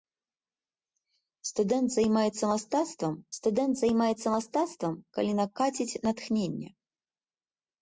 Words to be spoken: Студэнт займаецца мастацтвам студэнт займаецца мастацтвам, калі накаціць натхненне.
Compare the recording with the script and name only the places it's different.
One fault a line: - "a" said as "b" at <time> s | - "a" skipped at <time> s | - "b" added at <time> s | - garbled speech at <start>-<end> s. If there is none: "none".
none